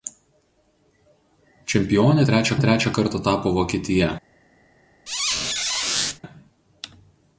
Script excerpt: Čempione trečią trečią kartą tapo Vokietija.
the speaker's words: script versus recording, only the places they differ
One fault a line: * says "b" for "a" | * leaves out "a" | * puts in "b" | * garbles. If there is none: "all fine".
all fine